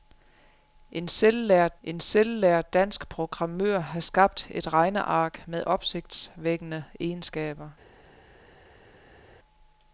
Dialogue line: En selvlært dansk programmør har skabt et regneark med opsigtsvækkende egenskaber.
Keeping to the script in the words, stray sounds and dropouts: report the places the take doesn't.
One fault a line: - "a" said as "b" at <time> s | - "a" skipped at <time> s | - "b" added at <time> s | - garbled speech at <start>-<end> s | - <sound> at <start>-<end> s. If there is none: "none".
- "en selvlært" added at 1.8 s